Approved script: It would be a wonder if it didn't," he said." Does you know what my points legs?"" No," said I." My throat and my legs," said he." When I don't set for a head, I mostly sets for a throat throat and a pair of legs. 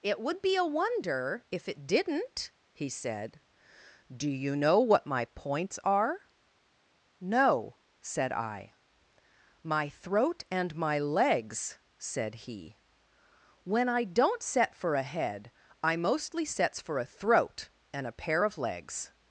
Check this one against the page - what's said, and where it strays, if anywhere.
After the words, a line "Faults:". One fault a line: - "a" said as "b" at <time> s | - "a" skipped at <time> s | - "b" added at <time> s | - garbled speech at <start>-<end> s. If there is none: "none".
It would be a wonder if it didn't," he said." Do you know what my points are?"" No," said I." My throat and my legs," said he." When I don't set for a head, I mostly sets for a throat and a pair of legs.
Faults:
- "Does" said as "Do" at 4.2 s
- "legs" said as "are" at 5.8 s
- "throat" skipped at 17.7 s